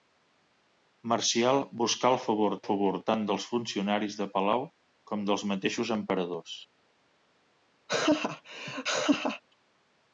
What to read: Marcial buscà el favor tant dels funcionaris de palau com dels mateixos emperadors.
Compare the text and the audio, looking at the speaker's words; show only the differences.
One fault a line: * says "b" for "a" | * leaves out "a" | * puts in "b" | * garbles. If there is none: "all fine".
* puts in "favor"